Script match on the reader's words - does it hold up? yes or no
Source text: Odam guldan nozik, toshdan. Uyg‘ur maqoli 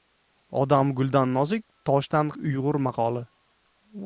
yes